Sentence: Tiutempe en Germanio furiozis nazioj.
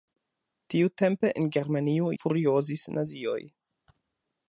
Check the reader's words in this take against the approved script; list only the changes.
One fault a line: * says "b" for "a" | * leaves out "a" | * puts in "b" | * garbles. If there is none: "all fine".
all fine